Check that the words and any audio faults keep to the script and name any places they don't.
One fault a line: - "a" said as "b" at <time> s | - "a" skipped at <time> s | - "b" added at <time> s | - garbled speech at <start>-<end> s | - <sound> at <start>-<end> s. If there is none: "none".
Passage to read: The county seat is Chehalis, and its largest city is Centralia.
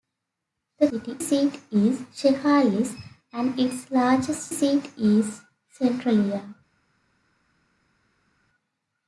- "county" said as "city" at 0.9 s
- "city" said as "seat" at 4.5 s